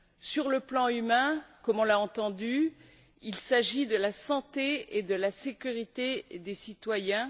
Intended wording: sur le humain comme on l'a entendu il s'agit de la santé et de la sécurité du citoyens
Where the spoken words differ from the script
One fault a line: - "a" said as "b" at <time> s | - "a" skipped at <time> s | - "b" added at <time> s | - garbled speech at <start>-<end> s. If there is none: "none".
- "plan" added at 0.6 s
- "du" said as "des" at 6.3 s